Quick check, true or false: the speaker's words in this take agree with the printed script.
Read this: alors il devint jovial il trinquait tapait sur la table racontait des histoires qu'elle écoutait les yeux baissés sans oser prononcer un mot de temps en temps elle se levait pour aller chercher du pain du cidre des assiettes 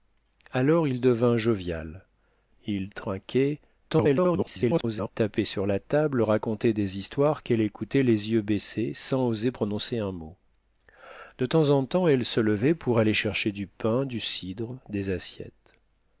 false